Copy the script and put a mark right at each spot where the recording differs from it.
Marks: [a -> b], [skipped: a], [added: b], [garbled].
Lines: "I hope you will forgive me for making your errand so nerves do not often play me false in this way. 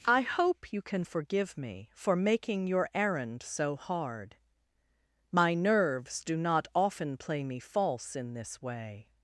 "I hope you [will -> can] forgive me for making your errand so [added: hard My] nerves do not often play me false in this way.